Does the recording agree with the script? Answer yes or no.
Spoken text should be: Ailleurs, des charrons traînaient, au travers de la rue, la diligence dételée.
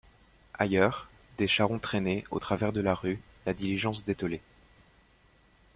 yes